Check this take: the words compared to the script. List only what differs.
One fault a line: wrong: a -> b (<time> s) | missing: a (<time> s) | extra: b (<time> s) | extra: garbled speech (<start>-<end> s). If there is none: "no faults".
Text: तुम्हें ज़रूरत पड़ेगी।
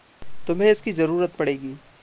extra: इसकी (0.7 s)